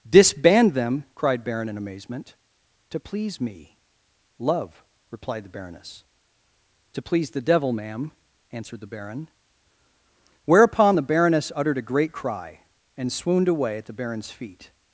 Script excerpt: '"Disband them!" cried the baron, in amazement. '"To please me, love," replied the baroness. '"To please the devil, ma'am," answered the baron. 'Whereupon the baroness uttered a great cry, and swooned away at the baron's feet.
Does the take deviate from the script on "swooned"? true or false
false